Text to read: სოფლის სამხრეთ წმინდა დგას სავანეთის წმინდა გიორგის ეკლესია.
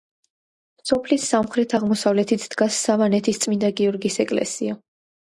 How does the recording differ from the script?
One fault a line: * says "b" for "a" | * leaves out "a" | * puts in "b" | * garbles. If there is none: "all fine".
* says "აღმოსავლეთით" for "წმინდა"